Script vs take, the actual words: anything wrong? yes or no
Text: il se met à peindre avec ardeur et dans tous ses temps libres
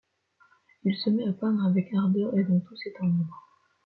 no